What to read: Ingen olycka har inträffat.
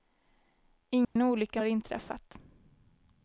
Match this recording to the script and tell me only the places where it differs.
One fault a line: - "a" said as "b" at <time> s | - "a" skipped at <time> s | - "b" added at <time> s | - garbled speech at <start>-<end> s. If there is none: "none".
none